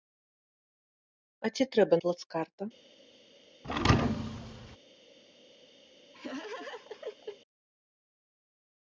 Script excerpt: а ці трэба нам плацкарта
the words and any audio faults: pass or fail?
fail